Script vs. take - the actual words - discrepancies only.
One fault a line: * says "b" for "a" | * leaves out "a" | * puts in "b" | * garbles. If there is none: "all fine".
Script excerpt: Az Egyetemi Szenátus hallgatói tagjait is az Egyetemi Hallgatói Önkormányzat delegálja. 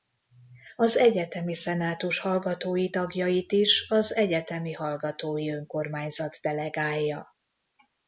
all fine